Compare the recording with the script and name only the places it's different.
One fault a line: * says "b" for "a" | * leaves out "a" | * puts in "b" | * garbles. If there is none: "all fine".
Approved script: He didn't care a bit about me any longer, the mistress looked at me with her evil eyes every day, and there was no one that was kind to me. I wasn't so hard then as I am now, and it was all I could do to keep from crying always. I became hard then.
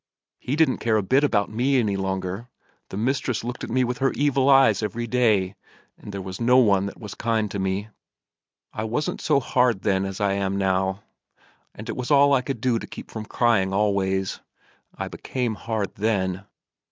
all fine